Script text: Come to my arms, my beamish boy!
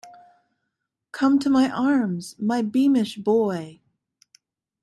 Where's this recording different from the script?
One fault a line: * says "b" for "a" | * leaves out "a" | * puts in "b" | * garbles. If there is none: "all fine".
all fine